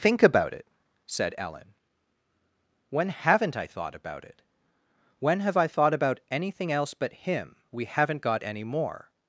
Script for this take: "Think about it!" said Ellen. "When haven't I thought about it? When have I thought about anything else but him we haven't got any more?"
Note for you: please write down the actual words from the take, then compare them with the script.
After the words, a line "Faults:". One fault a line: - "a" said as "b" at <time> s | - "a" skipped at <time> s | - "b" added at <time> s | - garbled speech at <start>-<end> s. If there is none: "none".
"Think about it!" said Ellen. "When haven't I thought about it? When have I thought about anything else but him we haven't got any more?"
Faults:
none